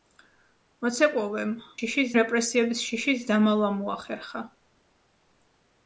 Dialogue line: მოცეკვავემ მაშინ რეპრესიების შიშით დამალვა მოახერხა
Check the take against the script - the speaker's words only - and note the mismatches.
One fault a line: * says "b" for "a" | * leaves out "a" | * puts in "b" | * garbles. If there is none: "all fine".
* says "შიშით" for "მაშინ"